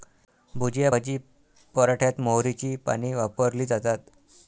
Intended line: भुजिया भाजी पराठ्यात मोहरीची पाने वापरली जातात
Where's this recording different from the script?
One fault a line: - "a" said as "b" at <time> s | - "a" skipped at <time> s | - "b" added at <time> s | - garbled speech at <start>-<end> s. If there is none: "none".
none